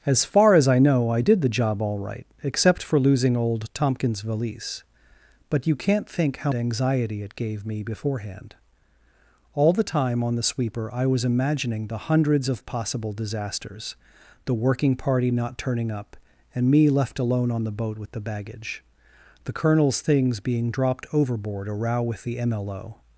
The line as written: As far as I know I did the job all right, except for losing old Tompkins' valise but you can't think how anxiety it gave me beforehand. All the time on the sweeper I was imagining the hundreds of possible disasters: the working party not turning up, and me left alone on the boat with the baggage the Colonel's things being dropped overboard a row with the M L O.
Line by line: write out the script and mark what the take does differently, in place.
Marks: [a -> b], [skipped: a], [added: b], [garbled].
As far as I know I did the job all right, except for losing old Tompkins' valise but you can't think how anxiety it gave me beforehand. All the time on the sweeper I was imagining the hundreds of possible disasters: the working party not turning up, and me left alone on the boat with the baggage the Colonel's things being dropped overboard a row with the M L O.